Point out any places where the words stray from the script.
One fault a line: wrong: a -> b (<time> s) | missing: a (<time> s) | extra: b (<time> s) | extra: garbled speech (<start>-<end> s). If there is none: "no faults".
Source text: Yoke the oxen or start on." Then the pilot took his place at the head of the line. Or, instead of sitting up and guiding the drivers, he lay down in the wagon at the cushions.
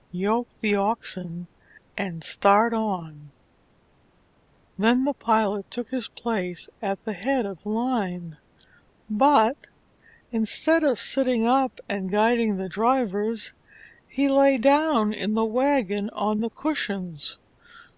wrong: or -> and (1.9 s)
wrong: Or -> But (9.1 s)
wrong: at -> on (16.1 s)